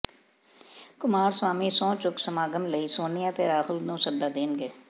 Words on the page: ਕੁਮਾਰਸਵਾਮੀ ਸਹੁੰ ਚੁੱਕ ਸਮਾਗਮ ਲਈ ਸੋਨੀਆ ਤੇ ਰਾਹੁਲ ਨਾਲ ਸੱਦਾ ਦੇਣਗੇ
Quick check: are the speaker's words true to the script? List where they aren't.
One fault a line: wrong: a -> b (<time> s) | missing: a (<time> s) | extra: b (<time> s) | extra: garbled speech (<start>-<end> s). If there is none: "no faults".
wrong: ਨਾਲ -> ਨੂੰ (3.8 s)